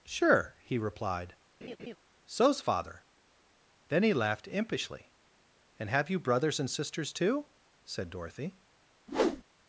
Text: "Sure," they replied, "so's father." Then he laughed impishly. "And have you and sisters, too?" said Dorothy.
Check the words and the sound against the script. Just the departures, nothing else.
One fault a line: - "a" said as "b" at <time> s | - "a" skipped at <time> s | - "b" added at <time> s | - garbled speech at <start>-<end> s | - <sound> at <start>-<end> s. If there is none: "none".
- "they" said as "he" at 0.6 s
- laugh at 1.6-2.0 s
- "brothers" added at 6.2 s
- whoosh at 9.1-9.4 s